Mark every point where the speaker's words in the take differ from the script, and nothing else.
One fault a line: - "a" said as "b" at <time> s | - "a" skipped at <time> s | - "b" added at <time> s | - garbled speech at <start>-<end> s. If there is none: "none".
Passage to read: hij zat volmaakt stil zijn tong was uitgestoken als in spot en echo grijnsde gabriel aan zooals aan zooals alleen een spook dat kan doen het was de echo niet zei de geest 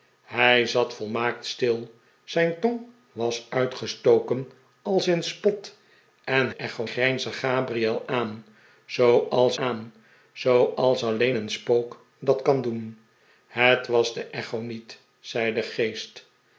none